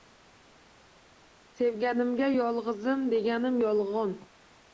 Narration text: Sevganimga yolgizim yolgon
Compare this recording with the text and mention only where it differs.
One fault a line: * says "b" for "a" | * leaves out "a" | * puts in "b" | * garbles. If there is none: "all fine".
* puts in "deganim"